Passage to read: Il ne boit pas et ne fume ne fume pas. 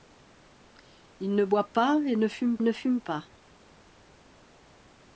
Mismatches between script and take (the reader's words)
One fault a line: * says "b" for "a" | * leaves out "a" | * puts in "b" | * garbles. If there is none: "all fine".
all fine